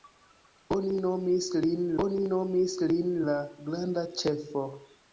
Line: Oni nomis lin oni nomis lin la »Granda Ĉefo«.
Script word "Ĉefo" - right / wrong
right